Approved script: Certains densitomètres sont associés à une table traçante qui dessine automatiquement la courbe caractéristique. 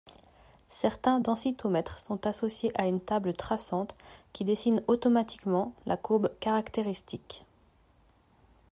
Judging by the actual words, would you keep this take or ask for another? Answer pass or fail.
pass